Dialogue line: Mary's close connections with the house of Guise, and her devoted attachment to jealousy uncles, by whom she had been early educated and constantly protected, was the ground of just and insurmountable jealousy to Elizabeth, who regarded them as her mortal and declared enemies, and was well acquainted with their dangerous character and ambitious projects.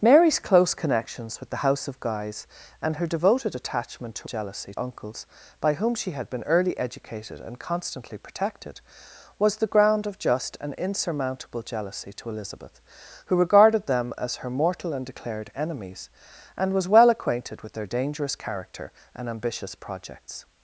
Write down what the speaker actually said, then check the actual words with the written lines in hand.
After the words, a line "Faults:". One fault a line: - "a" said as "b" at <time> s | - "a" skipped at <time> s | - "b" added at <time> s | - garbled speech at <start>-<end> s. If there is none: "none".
Mary's close connections with the house of Guise, and her devoted attachment to jealousy uncles, by whom she had been early educated and constantly protected, was the ground of just and insurmountable jealousy to Elizabeth, who regarded them as her mortal and declared enemies, and was well acquainted with their dangerous character and ambitious projects.
Faults:
none